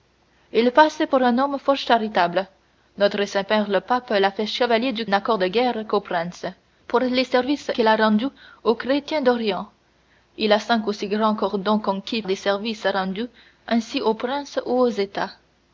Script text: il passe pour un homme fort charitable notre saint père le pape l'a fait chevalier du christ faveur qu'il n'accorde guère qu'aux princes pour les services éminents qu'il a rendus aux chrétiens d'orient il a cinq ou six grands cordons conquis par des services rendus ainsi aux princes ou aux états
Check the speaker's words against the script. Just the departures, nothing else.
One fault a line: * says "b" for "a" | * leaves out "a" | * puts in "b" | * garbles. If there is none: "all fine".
* leaves out "christ faveur qu'il"
* leaves out "éminents"
* leaves out "par"